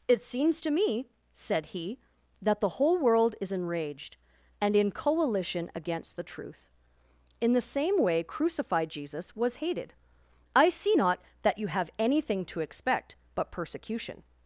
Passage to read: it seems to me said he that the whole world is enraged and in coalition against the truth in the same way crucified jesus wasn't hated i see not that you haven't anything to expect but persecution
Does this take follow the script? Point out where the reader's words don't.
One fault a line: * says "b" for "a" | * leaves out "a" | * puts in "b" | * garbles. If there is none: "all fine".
* says "was" for "wasn't"
* says "have" for "haven't"